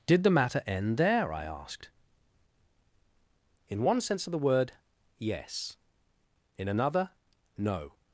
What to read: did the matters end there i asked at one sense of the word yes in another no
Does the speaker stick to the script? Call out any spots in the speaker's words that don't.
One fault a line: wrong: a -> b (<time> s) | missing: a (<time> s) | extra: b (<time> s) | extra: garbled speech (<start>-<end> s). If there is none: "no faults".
wrong: matters -> matter (0.3 s)
wrong: at -> in (3.7 s)